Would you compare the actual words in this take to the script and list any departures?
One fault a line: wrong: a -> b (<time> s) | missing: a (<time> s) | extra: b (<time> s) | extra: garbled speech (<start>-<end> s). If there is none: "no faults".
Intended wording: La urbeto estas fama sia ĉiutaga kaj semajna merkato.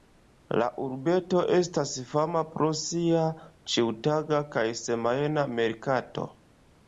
extra: pro (2.5 s)